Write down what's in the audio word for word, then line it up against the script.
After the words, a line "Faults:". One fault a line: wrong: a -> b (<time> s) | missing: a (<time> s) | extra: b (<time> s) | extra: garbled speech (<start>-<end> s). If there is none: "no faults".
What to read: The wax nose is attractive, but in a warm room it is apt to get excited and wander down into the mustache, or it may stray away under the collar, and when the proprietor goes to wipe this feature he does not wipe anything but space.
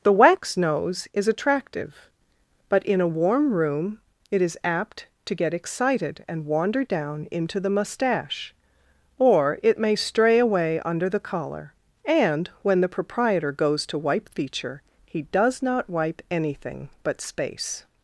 The wax nose is attractive, but in a warm room it is apt to get excited and wander down into the mustache, or it may stray away under the collar, and when the proprietor goes to wipe feature he does not wipe anything but space.
Faults:
missing: this (14.3 s)